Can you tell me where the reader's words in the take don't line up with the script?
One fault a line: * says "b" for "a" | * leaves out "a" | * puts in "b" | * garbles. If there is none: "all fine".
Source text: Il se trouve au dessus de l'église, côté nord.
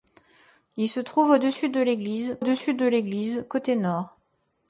* puts in "dessus de l'église"